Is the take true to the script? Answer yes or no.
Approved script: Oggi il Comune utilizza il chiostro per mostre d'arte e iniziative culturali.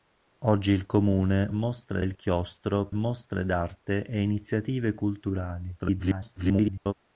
no